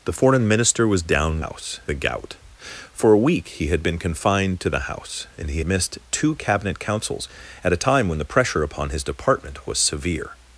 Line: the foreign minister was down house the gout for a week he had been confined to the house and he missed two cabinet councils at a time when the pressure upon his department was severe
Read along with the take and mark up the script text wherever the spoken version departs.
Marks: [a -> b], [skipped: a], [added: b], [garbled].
the foreign minister was down house the gout for a week he had been confined to the house and he missed two cabinet councils at a time when the pressure upon his department was severe